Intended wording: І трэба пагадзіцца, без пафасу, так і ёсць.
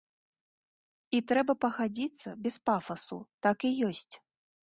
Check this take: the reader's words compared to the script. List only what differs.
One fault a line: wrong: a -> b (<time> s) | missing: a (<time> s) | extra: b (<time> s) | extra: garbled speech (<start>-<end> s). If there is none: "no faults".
no faults